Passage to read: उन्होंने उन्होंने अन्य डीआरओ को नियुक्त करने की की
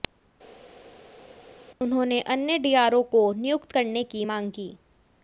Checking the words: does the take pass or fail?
fail